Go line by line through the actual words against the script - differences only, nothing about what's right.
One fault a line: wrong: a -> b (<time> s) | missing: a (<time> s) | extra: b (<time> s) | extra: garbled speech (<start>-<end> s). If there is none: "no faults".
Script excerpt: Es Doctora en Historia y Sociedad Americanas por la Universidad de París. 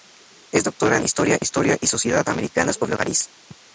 extra: Historia (1.4 s)
missing: Universidad de (3.0 s)